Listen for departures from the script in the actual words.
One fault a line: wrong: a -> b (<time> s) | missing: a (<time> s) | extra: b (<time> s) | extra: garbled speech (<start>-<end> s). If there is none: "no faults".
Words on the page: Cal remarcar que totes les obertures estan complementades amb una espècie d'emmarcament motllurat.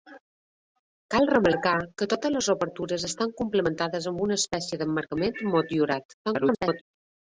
extra: garbled speech (6.2-6.8 s)